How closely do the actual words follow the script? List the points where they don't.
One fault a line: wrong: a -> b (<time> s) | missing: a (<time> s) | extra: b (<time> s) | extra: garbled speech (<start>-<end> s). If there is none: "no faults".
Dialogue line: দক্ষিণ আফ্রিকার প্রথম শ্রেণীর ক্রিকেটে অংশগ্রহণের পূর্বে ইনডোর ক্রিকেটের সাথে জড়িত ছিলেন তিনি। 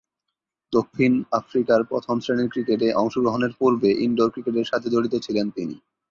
no faults